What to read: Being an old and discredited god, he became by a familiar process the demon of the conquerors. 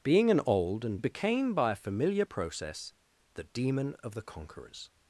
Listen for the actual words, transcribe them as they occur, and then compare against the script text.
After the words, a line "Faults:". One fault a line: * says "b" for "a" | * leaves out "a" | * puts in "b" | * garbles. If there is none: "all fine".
Being an old and became by a familiar process the demon of the conquerors.
Faults:
* leaves out "discredited god he"